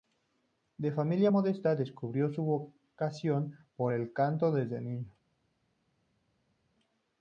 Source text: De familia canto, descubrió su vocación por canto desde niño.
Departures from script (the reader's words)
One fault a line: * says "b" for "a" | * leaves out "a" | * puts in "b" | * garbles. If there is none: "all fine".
* says "modesta" for "canto"
* puts in "el"